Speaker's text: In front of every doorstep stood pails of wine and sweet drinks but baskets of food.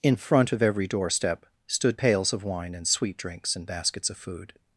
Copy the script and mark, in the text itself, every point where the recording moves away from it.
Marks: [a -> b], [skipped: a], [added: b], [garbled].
In front of every doorstep stood pails of wine and sweet drinks [but -> and] baskets of food.